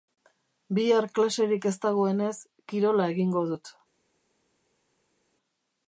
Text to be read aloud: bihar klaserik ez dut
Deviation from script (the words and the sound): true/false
true